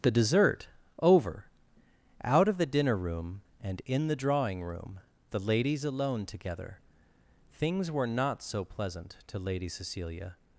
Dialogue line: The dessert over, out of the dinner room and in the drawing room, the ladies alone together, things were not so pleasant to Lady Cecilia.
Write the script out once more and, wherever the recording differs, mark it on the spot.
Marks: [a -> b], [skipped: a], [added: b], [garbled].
The dessert over, out of the dinner room and in the drawing room, the ladies alone together, things were not so pleasant to Lady Cecilia.